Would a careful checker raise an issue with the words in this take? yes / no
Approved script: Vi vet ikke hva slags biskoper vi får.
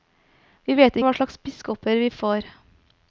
yes